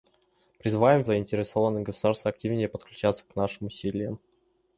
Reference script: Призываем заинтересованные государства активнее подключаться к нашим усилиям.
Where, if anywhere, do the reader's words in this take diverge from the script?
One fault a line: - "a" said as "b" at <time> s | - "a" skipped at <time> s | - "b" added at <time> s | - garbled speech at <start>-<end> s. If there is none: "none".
none